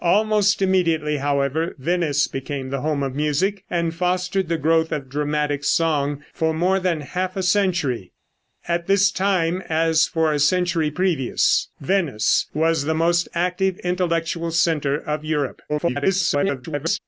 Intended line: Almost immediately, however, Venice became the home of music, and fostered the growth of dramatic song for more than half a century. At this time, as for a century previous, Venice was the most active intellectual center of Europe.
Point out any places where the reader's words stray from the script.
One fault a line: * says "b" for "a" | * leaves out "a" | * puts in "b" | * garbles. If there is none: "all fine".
* garbles